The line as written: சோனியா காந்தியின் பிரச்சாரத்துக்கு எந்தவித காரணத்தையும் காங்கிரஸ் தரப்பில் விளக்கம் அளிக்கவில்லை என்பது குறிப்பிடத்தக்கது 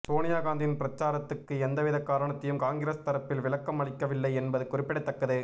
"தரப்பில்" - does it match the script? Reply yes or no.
yes